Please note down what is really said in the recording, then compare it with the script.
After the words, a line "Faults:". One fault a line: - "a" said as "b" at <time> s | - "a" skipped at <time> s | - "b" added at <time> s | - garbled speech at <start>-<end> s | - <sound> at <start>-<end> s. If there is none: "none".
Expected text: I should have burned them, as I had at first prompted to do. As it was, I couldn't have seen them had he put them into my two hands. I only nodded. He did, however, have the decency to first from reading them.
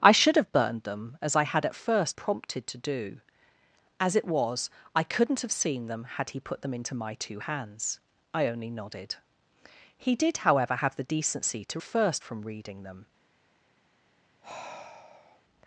I should have burned them, as I had at first prompted to do. As it was, I couldn't have seen them had he put them into my two hands. I only nodded. He did, however, have the decency to first from reading them.
Faults:
- sigh at 14.4-15.4 s